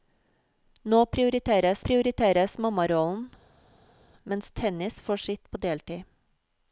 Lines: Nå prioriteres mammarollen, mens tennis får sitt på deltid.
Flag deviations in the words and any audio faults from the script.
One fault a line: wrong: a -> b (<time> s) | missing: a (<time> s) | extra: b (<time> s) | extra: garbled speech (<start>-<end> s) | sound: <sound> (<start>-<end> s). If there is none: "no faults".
extra: prioriteres (1.9 s)